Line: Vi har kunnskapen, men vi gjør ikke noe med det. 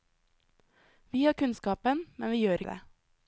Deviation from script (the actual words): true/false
true